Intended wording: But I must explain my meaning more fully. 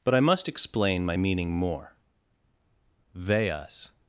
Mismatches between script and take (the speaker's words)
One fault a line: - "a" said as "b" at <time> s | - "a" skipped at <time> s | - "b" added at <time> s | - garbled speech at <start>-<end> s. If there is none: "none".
- "fully" said as "veas" at 3.1 s